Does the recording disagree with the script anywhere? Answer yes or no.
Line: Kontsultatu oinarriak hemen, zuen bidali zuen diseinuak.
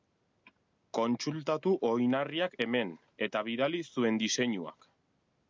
yes